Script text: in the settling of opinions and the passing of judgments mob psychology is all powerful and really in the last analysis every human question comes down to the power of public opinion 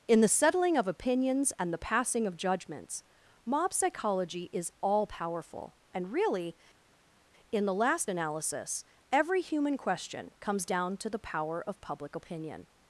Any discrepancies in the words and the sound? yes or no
no